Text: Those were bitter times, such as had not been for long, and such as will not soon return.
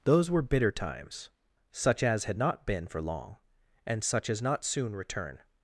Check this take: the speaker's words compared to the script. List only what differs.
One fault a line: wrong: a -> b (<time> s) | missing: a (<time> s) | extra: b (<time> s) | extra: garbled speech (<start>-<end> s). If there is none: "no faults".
missing: will (4.4 s)